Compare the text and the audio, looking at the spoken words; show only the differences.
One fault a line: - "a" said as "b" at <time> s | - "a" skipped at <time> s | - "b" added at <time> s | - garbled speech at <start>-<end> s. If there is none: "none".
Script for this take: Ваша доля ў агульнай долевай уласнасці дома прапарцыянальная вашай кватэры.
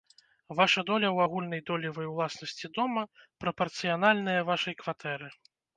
none